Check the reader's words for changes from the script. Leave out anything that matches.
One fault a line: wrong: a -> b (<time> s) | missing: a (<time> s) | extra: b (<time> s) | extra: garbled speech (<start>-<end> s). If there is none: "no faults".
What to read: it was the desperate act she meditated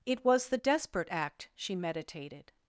no faults